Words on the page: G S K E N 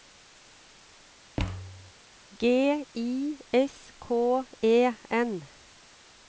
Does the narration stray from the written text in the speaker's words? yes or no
yes